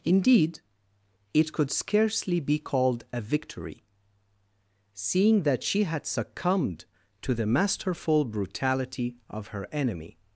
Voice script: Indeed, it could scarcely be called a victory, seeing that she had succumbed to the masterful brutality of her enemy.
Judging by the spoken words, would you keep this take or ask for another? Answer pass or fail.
pass